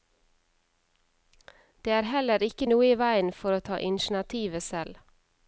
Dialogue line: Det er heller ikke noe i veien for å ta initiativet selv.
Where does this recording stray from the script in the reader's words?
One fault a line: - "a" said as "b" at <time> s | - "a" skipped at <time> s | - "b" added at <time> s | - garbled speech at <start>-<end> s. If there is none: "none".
none